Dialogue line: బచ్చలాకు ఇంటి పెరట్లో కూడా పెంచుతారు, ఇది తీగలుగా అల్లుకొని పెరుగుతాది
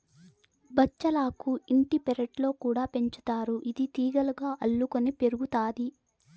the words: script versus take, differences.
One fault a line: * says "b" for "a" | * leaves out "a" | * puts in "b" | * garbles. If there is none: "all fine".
all fine